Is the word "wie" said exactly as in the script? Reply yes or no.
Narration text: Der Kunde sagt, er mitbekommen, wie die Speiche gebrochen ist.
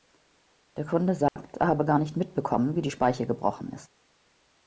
yes